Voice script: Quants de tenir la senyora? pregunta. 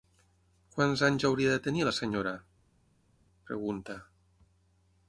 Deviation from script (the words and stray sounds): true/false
true